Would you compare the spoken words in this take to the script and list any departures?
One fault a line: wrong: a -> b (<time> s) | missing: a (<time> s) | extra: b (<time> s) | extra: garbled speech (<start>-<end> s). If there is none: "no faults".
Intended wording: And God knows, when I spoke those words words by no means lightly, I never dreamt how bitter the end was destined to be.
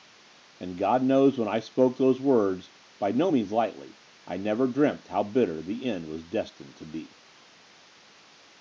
missing: words (2.7 s)